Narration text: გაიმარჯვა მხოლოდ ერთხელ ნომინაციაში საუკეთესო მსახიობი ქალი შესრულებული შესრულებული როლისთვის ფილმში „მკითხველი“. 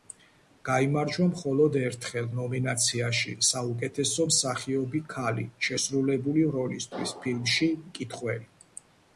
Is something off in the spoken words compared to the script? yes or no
yes